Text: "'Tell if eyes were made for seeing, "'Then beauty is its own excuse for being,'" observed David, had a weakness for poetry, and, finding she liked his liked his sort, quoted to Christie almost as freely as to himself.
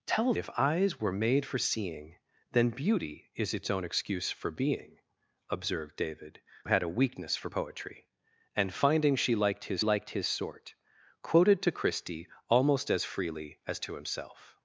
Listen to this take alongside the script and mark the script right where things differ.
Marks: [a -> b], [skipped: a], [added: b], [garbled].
"'Tell if eyes were made for seeing, "'Then beauty is its own excuse for being,'" observed David, had a weakness for poetry, and, finding she liked his liked his sort, quoted to Christie almost as freely as to himself.